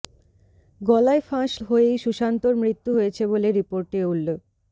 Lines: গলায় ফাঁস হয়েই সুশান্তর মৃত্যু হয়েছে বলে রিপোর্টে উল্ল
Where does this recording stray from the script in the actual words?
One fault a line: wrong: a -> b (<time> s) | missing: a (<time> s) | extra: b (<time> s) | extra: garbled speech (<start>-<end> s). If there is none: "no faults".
no faults